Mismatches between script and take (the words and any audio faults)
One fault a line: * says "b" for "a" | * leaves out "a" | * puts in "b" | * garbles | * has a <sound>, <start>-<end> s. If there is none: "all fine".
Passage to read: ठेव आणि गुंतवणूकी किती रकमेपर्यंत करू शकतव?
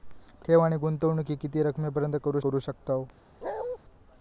* puts in "करू"
* has a bark, 3.4-3.8 s